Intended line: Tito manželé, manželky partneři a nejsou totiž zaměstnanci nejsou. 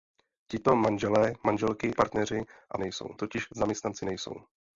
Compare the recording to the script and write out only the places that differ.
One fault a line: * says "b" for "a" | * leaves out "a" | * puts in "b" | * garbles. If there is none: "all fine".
all fine